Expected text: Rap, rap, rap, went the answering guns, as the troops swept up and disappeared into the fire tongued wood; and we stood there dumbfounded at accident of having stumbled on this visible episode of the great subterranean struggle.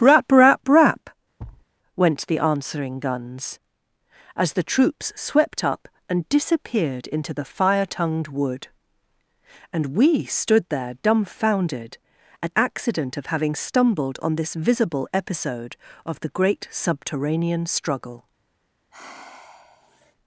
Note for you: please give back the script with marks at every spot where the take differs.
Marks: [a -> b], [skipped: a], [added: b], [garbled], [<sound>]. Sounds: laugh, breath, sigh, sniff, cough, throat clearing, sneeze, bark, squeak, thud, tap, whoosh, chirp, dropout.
Rap, rap, rap, [thud] went the answering guns, as the troops swept up and disappeared into the fire tongued wood; and we stood there dumbfounded at accident of having stumbled on this visible episode of the great subterranean struggle. [sigh]